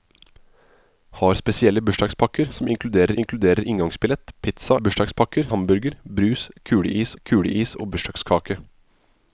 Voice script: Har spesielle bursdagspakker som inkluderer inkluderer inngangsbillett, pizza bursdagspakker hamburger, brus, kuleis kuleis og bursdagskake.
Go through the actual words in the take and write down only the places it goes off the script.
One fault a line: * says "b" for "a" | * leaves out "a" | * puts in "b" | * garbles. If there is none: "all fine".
all fine